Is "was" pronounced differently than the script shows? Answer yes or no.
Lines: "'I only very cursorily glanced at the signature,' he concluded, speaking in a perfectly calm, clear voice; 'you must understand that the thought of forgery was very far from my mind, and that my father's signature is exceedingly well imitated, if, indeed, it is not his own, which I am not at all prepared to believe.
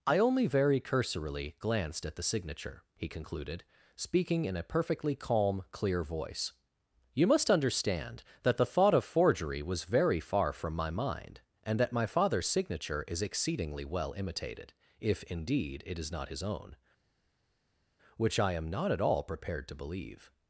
no